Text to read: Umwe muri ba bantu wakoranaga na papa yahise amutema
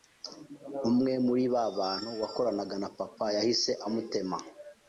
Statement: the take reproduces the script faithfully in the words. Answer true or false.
true